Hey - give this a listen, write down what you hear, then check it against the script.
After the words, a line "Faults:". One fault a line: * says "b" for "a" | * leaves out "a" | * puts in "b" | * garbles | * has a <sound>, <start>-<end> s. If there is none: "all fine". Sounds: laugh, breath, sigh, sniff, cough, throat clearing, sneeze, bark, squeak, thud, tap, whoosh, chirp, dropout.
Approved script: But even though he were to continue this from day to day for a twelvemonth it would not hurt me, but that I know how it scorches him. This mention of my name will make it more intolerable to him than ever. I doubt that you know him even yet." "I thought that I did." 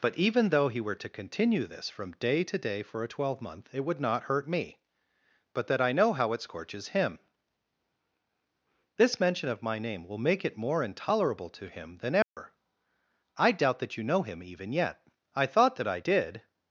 But even though he were to continue this from day to day for a twelvemonth it would not hurt me, but that I know how it scorches him. This mention of my name will make it more intolerable to him than ever. I doubt that you know him even yet." "I thought that I did."
Faults:
* has a dropout, 12.2-12.4 s